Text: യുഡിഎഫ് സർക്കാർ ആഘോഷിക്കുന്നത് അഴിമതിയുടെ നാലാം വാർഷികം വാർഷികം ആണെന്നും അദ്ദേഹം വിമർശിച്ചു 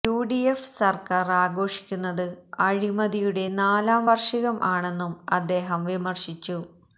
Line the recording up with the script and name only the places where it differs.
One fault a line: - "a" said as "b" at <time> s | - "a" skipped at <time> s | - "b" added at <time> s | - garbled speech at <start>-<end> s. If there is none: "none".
- "വാർഷികം" skipped at 4.6 s